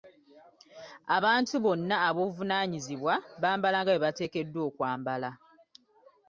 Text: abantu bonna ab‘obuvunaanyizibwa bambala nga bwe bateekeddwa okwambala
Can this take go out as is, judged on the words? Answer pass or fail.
pass